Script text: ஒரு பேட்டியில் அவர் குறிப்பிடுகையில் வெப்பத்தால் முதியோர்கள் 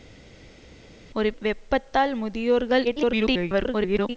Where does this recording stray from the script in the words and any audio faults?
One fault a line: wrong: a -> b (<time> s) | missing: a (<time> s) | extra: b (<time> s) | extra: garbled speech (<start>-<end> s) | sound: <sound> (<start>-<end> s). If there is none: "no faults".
missing: பேட்டியில் அவர் குறிப்பிடுகையில் (1.3 s)
extra: garbled speech (2.8-4.2 s)